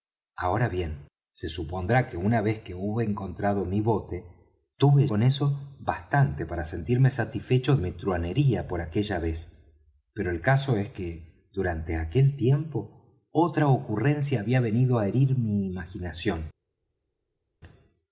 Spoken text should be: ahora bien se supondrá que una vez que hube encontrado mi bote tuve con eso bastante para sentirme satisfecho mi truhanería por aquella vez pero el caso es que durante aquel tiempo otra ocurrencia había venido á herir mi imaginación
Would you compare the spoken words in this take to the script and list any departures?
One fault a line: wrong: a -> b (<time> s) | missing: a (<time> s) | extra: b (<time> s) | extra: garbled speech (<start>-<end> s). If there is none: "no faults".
no faults